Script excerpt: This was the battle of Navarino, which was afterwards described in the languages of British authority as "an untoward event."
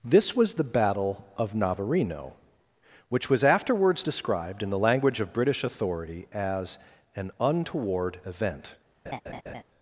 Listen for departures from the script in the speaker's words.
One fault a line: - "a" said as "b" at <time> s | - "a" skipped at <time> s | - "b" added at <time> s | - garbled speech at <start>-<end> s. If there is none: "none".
- "languages" said as "language" at 4.8 s